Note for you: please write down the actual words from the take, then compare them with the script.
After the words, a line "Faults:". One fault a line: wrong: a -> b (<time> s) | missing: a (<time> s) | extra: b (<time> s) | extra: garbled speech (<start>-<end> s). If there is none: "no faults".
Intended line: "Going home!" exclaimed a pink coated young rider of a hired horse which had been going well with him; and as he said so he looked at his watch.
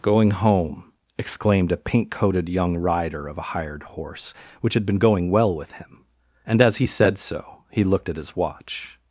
"Going home!" exclaimed a pink coated young rider of a hired horse which had been going well with him; and as he said so he looked at his watch.
Faults:
no faults